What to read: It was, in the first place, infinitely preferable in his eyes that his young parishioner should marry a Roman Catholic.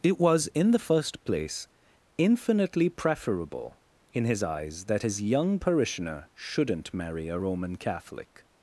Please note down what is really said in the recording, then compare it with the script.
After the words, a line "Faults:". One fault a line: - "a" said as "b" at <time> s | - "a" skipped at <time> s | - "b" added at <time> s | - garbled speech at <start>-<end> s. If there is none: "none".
It was, in the first place, infinitely preferable in his eyes that his young parishioner shouldn't marry a Roman Catholic.
Faults:
- "should" said as "shouldn't" at 6.3 s